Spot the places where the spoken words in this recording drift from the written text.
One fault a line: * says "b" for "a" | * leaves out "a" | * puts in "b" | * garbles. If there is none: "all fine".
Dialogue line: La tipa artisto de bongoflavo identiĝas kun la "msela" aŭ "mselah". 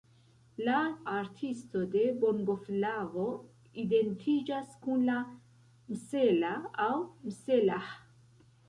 * leaves out "tipa"